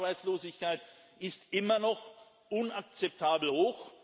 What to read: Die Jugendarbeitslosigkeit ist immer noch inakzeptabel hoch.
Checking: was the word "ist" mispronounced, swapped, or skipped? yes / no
no